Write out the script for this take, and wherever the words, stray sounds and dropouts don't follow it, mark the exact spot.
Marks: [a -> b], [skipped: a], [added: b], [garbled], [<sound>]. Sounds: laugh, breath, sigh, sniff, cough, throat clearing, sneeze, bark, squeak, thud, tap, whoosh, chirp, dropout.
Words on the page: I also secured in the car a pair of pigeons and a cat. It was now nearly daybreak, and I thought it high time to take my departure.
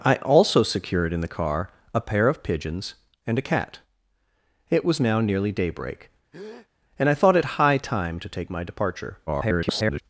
I also secured in the car a pair of pigeons and a cat. It was now nearly daybreak, [breath] and I thought it high time to take my departure. [garbled]